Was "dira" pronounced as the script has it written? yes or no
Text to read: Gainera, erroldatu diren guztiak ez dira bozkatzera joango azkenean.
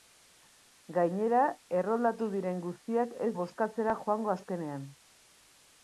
no